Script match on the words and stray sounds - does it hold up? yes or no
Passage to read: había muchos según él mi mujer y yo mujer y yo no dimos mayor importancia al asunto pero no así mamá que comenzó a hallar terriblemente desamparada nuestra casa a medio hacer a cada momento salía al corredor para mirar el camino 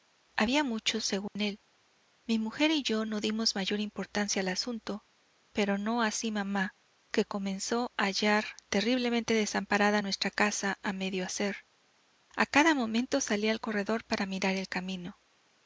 no